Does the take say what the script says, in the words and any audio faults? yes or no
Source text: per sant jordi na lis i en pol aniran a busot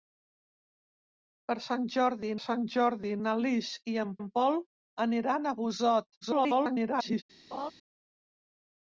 no